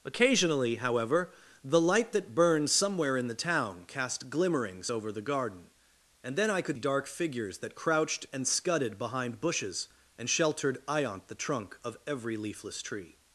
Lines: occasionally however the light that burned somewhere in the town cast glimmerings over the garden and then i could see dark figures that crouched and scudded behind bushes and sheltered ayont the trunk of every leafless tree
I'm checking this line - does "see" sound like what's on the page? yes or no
no